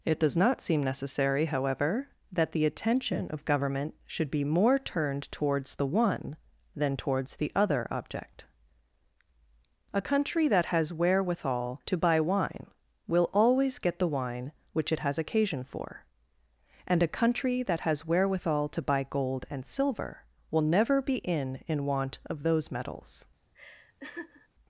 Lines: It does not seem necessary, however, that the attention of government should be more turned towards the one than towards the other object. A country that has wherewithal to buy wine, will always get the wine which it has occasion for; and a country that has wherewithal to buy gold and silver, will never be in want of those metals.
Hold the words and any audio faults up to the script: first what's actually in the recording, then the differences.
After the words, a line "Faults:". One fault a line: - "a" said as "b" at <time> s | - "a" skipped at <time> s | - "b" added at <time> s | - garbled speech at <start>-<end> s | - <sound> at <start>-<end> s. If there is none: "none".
It does not seem necessary, however, that the attention of government should be more turned towards the one than towards the other object. A country that has wherewithal to buy wine, will always get the wine which it has occasion for; and a country that has wherewithal to buy gold and silver, will never be in in want of those metals.
Faults:
- "in" added at 21.7 s
- laugh at 23.5-24.5 s